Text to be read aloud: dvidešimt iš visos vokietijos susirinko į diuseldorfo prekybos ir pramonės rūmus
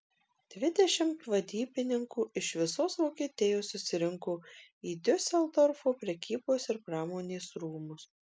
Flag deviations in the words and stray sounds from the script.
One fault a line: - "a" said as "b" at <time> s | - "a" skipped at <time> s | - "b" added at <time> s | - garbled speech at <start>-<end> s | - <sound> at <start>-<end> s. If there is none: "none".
- "vadybininkų" added at 1.3 s